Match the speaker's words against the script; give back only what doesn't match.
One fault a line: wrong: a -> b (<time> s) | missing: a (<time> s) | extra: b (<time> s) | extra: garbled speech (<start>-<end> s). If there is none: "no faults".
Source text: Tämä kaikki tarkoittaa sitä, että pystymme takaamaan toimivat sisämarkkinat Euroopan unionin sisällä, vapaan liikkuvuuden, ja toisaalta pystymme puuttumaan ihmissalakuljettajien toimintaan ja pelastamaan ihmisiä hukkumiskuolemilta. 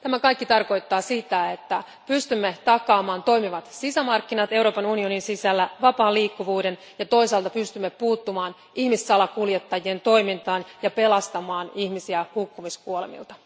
no faults